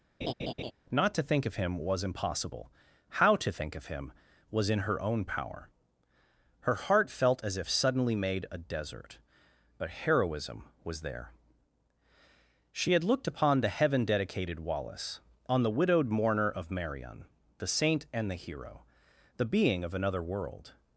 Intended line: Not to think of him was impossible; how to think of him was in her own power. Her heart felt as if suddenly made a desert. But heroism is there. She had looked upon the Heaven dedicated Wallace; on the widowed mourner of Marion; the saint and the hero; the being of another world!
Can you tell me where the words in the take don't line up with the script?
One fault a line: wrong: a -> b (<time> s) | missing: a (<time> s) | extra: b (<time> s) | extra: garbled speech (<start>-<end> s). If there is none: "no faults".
wrong: is -> was (10.8 s)